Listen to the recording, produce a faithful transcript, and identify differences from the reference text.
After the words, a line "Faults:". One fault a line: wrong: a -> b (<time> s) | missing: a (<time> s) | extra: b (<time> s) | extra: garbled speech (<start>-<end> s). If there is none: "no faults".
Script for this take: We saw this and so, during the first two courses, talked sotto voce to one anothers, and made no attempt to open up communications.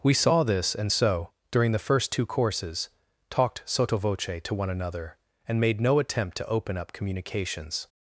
We saw this and so, during the first two courses, talked sotto voce to one another, and made no attempt to open up communications.
Faults:
wrong: anothers -> another (4.7 s)